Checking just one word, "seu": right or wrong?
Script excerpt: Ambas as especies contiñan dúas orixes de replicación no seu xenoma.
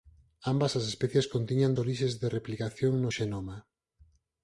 wrong